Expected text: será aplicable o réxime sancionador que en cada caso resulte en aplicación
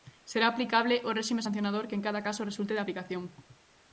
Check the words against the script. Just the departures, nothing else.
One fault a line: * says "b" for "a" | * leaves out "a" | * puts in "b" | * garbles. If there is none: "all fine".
* says "de" for "en"